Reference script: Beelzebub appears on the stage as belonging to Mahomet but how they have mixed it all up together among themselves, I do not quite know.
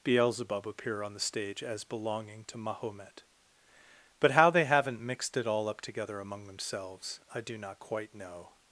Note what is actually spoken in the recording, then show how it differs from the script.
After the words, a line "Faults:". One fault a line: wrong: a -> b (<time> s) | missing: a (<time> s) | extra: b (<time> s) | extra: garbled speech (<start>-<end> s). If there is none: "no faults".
Beelzebub appear on the stage as belonging to Mahomet but how they haven't mixed it all up together among themselves, I do not quite know.
Faults:
wrong: appears -> appear (0.7 s)
wrong: have -> haven't (4.7 s)